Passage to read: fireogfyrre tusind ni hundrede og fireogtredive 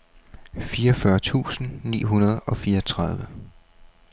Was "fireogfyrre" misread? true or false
false